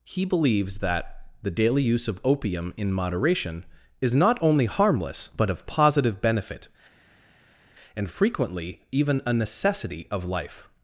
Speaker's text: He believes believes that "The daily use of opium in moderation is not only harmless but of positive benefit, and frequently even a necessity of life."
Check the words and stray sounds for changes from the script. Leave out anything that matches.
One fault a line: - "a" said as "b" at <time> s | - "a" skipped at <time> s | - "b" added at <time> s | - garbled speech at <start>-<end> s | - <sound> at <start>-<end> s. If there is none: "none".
- "believes" skipped at 0.8 s